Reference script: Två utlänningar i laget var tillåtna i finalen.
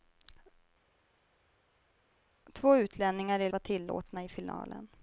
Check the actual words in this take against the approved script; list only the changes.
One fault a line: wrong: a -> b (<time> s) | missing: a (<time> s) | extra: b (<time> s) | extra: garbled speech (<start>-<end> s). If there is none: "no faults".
missing: laget (3.5 s)